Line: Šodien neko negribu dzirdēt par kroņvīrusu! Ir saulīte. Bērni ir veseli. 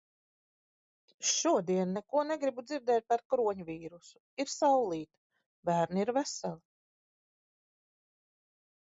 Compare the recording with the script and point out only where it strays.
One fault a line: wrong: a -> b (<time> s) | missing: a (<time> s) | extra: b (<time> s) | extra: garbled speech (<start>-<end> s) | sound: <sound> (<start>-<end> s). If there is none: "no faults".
no faults